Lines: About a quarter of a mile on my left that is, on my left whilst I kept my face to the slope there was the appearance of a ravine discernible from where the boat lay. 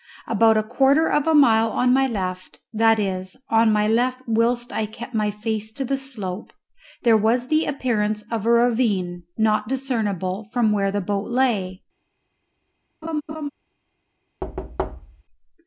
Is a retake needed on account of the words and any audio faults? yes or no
yes